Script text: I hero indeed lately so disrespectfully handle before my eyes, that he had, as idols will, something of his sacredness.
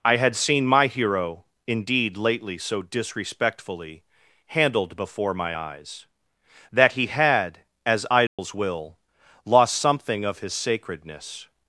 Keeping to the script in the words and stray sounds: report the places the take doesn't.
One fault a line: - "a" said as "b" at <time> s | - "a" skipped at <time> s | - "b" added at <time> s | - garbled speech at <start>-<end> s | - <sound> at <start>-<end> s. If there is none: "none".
- "had seen my" added at 0.1 s
- "handle" said as "handled" at 4.5 s
- dropout at 8.3-8.4 s
- "lost" added at 9.4 s